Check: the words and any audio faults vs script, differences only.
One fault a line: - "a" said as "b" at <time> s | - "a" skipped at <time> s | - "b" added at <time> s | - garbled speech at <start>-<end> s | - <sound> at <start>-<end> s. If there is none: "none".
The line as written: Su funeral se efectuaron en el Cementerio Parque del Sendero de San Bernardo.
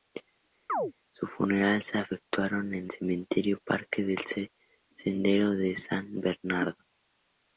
- chirp at 0.7-0.9 s
- "el" skipped at 2.9 s